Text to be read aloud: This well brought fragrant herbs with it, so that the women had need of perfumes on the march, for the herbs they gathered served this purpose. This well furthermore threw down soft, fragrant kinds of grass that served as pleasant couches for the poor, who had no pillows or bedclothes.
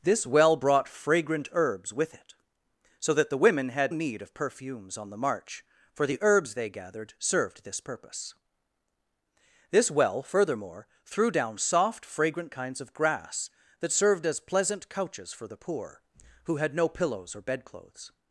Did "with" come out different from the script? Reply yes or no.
no